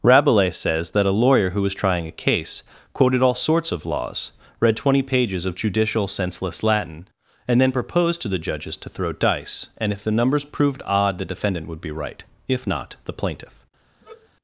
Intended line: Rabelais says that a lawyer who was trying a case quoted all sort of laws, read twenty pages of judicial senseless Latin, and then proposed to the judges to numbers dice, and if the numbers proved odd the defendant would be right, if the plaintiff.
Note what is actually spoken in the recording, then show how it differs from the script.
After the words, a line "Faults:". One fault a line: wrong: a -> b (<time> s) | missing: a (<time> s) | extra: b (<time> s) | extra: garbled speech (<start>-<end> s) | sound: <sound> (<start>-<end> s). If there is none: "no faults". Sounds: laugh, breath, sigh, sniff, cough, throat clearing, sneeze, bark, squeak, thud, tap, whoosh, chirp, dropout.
Rabelais says that a lawyer who was trying a case quoted all sorts of laws, read twenty pages of judicial senseless Latin, and then proposed to the judges to throw dice, and if the numbers proved odd the defendant would be right, if not, the plaintiff.
Faults:
wrong: sort -> sorts (3.4 s)
wrong: numbers -> throw (8.9 s)
extra: not (12.7 s)
sound: sigh (14.0-14.3 s)